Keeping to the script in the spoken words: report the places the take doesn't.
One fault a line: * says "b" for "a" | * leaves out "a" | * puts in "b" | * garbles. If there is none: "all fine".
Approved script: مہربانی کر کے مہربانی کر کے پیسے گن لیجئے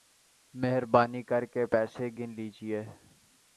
* leaves out "مہربانی کر کے"